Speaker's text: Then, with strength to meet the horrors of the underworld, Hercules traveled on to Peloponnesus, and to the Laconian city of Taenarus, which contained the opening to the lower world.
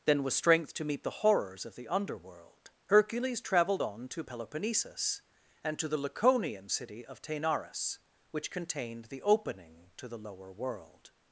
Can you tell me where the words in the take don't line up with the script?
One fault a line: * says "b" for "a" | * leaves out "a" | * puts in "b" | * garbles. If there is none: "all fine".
all fine